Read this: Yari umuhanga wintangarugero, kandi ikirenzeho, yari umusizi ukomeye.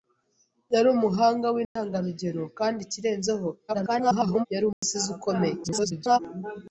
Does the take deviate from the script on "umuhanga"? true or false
false